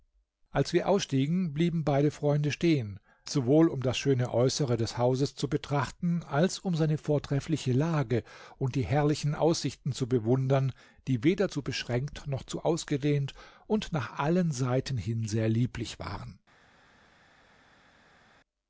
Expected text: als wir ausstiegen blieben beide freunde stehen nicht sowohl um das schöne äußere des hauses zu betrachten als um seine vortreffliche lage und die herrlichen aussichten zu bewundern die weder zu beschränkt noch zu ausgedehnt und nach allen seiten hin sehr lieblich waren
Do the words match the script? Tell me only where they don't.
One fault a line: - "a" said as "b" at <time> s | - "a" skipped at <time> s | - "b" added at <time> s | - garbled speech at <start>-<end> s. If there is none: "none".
- "nicht" skipped at 3.0 s